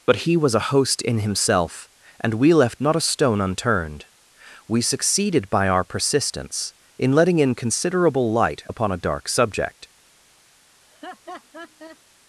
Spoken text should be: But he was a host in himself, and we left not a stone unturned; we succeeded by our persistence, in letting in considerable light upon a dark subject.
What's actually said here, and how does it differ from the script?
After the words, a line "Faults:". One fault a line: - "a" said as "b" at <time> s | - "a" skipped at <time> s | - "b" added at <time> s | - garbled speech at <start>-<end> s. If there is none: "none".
But he was a host in himself, and we left not a stone unturned; we succeeded by our persistence, in letting in considerable light upon a dark subject.
Faults:
none